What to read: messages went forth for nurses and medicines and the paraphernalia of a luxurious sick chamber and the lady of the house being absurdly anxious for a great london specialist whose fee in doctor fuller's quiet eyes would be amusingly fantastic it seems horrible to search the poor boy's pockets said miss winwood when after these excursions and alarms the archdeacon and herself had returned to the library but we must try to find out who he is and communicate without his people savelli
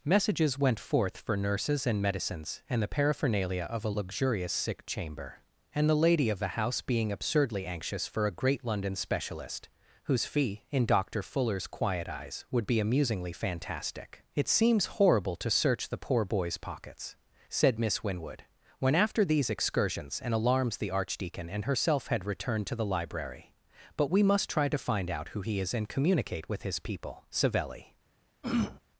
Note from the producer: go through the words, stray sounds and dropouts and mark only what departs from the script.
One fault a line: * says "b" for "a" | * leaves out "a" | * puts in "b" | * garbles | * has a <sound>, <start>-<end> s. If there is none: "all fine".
* says "with" for "without"
* has a throat clearing, 28.4-28.8 s